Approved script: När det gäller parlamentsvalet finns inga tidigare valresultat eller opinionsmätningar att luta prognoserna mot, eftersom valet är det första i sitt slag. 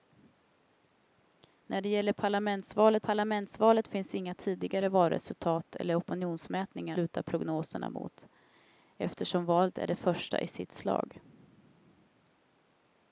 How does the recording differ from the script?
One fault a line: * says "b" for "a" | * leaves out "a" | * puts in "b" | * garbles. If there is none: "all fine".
* puts in "parlamentsvalet"
* leaves out "att"